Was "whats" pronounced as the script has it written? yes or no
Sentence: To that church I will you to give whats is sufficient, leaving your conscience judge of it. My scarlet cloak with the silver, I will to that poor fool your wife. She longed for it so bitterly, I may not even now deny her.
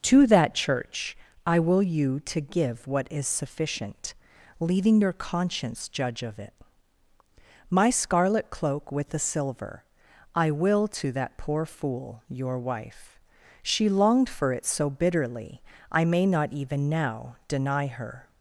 no